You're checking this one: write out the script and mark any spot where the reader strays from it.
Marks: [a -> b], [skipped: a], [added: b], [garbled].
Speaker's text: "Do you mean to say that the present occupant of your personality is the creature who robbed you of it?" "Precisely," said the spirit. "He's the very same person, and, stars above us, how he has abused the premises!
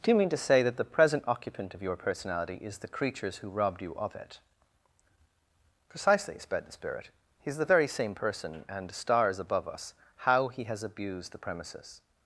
"Do you mean to say that the present occupant of your personality is the [creature -> creatures] who robbed you of it?" "Precisely," [said -> sped] the spirit. "He's the very same person, and, stars above us, how he has abused the premises!